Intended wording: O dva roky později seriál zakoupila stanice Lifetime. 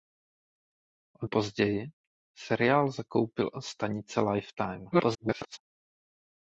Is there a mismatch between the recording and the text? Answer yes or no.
yes